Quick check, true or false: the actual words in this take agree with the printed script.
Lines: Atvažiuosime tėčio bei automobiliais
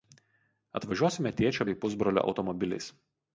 false